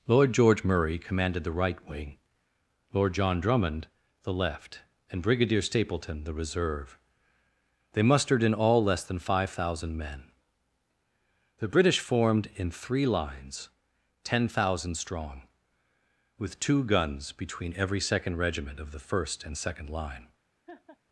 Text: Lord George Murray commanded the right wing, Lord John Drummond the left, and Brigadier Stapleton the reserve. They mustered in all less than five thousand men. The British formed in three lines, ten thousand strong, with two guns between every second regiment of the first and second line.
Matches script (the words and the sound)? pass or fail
fail